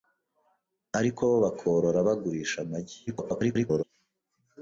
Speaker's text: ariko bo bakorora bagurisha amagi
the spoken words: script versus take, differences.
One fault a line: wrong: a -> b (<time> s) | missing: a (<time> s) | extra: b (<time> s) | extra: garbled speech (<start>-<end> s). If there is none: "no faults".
extra: garbled speech (3.1-3.8 s)